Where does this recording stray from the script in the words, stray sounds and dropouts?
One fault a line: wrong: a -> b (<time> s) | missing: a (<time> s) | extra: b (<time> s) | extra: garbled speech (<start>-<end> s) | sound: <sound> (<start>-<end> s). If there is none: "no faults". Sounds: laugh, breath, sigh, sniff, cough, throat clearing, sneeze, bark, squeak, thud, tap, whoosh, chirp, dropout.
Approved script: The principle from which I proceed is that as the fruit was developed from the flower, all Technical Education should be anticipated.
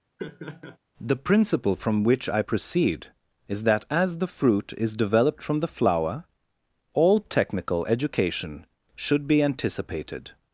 sound: laugh (0.2-0.8 s)
wrong: was -> is (4.8 s)